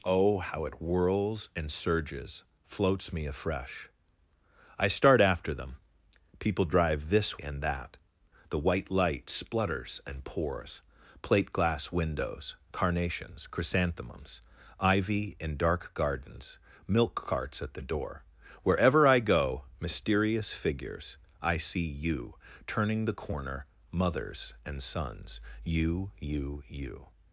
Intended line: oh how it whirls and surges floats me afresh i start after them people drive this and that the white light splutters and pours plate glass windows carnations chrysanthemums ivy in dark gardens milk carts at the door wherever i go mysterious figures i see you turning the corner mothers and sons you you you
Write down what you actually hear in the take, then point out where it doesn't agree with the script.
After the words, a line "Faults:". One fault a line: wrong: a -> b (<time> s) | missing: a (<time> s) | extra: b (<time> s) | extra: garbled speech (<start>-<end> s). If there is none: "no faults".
oh how it whirls and surges floats me afresh i start after them people drive this and that the white light splutters and pours plate glass windows carnations chrysanthemums ivy in dark gardens milk carts at the door wherever i go mysterious figures i see you turning the corner mothers and sons you you you
Faults:
no faults